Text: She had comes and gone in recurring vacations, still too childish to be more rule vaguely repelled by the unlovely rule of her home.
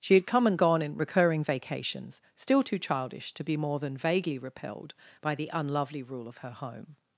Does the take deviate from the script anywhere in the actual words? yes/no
yes